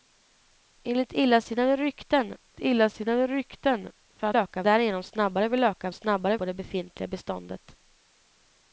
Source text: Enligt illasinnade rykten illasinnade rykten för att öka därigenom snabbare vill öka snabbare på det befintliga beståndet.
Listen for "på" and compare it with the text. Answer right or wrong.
right